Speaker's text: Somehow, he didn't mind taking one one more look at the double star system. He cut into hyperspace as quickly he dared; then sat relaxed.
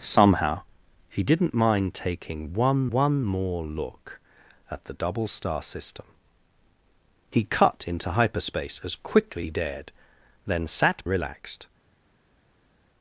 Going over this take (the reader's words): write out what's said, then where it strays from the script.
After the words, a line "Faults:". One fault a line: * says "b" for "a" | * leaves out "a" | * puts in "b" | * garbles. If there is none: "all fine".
Somehow, he didn't mind taking one one more look at the double star system. He cut into hyperspace as quickly he dared; then sat relaxed.
Faults:
all fine